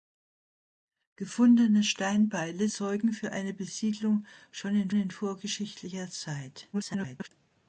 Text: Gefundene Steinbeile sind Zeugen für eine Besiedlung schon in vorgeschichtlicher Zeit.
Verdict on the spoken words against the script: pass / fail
fail